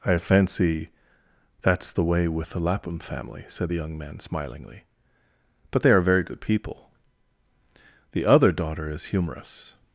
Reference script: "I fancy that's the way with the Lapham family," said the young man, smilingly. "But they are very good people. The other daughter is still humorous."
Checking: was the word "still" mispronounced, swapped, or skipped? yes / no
yes